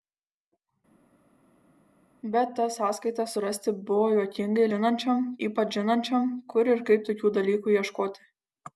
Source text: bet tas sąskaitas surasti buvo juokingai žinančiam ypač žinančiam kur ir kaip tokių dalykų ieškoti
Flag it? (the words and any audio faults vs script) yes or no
no